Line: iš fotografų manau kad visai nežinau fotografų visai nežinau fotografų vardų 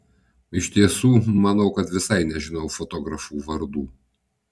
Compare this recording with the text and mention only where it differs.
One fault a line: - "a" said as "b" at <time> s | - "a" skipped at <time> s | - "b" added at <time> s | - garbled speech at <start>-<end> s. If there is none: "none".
- "fotografų" said as "tiesų" at 0.8 s
- "visai nežinau fotografų" skipped at 3.4 s